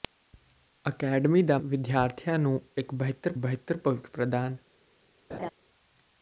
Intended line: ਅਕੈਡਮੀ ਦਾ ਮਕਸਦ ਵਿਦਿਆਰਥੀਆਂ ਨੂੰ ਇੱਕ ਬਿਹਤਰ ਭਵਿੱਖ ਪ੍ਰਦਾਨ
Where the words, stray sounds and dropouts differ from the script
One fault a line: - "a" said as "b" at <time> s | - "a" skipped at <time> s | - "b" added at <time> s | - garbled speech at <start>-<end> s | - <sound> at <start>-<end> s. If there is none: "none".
- "ਮਕਸਦ" skipped at 1.6 s
- "ਬਿਹਤਰ" added at 3.4 s
- laugh at 5.3-5.5 s